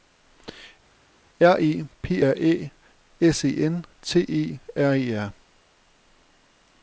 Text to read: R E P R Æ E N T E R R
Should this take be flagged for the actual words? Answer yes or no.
yes